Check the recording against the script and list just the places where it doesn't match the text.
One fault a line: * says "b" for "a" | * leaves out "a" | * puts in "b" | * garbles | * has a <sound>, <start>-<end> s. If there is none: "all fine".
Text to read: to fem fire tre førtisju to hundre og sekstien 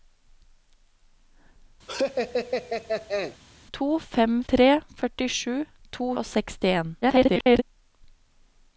* has a laugh, 1.9-3.4 s
* leaves out "fire"
* leaves out "hundre"
* garbles